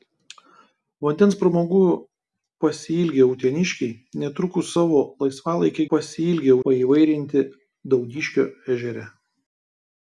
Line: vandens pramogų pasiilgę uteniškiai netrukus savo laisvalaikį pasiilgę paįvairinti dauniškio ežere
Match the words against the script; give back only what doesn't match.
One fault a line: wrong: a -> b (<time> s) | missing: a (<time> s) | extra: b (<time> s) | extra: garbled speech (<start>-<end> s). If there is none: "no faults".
no faults